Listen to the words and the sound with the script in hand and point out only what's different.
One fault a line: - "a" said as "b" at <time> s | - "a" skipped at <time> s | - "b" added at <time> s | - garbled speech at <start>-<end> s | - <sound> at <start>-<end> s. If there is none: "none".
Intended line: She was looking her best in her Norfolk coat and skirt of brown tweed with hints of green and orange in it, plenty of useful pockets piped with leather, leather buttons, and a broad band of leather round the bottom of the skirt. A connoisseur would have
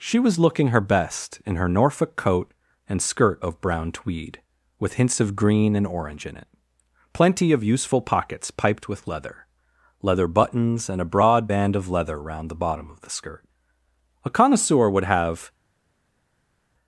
none